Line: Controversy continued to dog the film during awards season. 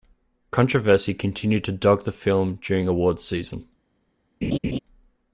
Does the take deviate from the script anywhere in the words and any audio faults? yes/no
yes